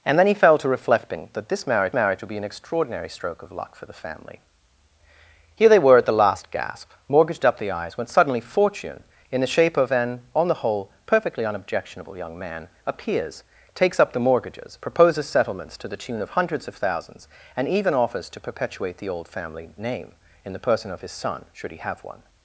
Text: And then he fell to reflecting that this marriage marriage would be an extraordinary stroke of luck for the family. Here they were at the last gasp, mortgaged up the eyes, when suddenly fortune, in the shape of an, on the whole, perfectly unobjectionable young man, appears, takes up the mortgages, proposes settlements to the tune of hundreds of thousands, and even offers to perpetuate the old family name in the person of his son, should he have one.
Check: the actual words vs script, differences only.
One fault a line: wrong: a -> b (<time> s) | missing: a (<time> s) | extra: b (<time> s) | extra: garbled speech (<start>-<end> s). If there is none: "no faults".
no faults